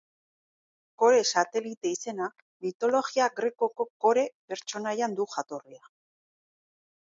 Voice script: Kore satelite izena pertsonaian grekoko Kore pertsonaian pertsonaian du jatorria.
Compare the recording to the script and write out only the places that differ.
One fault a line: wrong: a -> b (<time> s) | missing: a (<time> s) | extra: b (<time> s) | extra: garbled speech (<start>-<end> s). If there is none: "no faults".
wrong: pertsonaian -> mitologia (2.7 s)
missing: pertsonaian (5.2 s)